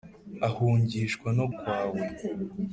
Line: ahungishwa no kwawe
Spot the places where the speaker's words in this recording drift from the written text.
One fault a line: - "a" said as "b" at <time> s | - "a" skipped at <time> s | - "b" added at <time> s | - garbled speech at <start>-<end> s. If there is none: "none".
none